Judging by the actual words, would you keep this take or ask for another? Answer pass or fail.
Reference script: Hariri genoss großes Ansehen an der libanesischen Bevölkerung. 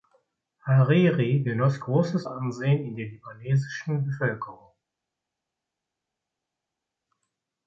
fail